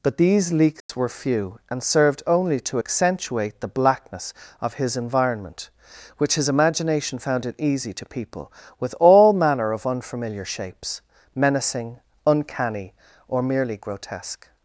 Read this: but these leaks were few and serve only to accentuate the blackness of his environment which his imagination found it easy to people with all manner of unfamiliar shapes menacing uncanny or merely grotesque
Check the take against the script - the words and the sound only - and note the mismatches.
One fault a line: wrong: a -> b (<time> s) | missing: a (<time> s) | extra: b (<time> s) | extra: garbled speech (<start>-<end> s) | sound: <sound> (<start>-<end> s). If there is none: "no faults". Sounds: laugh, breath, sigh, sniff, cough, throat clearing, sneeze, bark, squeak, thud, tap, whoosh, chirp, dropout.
sound: dropout (0.8-0.9 s)
wrong: serve -> served (1.8 s)